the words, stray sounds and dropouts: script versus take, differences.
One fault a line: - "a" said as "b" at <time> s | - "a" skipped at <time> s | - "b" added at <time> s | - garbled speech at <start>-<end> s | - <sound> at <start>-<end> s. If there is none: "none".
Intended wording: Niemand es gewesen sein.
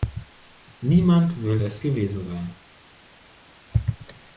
- "will" added at 1.4 s